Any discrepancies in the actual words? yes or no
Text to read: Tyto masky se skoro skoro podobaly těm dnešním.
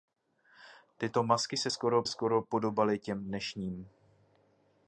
no